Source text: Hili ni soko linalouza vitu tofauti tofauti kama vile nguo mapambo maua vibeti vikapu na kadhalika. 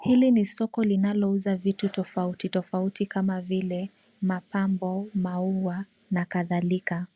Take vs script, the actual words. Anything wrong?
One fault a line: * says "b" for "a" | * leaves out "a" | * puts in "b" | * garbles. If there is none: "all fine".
* leaves out "nguo"
* leaves out "vibeti vikapu"